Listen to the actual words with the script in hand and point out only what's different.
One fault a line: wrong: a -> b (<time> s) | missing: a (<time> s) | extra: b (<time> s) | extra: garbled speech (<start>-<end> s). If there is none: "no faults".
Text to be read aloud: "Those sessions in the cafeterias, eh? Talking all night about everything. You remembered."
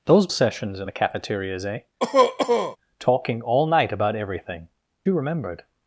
no faults